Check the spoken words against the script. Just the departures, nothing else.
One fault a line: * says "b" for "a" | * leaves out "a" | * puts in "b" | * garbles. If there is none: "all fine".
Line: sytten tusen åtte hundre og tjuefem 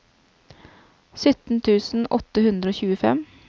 all fine